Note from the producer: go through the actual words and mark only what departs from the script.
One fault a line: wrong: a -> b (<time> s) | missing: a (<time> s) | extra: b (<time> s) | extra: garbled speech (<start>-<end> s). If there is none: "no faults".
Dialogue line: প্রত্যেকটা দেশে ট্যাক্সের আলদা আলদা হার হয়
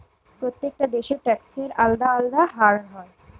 no faults